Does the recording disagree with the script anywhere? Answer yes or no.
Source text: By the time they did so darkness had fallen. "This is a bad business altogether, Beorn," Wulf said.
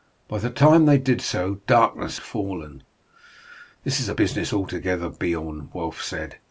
yes